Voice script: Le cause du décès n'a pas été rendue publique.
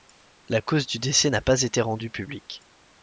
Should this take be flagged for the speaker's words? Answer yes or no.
yes